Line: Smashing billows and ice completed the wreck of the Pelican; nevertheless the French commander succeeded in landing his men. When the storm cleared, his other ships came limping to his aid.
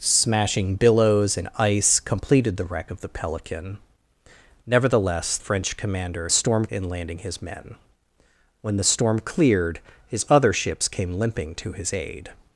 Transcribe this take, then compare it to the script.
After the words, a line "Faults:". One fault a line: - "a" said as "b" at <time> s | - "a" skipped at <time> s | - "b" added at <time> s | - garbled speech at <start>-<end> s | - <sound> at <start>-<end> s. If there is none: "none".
Smashing billows and ice completed the wreck of the Pelican; nevertheless French commander storm in landing his men. When the storm cleared, his other ships came limping to his aid.
Faults:
- "the" skipped at 5.4 s
- "succeeded" said as "storm" at 6.3 s